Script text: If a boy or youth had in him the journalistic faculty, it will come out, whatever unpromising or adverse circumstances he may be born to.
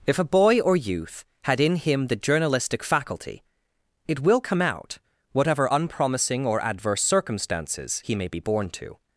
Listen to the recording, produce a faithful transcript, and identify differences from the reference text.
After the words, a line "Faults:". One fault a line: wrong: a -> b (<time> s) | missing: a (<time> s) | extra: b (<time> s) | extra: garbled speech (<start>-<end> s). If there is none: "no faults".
If a boy or youth had in him the journalistic faculty, it will come out, whatever unpromising or adverse circumstances he may be born to.
Faults:
no faults